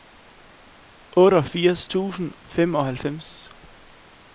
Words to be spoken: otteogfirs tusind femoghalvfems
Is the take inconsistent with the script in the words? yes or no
no